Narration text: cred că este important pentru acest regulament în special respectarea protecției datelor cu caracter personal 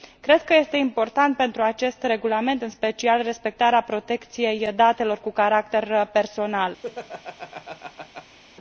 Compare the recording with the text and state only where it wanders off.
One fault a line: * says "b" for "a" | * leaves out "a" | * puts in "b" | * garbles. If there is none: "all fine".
all fine